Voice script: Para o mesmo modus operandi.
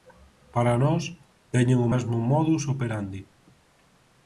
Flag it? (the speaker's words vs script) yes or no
yes